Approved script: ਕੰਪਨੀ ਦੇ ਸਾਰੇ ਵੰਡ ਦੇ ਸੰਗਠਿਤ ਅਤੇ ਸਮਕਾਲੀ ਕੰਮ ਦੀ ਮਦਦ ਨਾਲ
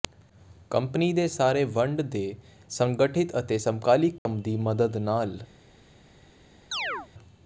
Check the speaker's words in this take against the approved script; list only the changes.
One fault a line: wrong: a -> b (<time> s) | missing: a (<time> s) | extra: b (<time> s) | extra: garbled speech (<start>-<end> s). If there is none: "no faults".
no faults